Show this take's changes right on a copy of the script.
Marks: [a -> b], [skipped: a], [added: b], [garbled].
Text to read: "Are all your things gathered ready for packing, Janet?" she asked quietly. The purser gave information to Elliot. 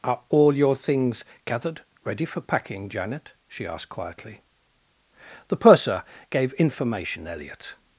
"Are all your things gathered ready for packing, Janet?" she asked quietly. The purser gave information [skipped: to] Elliot.